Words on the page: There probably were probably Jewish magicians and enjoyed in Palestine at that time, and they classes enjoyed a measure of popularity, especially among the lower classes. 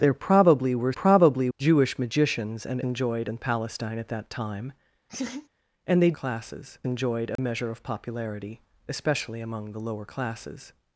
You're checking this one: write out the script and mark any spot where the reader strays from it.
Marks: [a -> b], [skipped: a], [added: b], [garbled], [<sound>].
There probably were probably Jewish magicians and enjoyed in Palestine at that time, [laugh] and they classes enjoyed a [dropout] measure of popularity, especially among the lower classes.